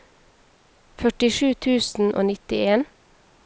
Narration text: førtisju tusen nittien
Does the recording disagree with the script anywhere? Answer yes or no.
yes